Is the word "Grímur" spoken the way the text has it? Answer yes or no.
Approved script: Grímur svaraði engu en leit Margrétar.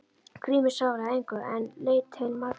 yes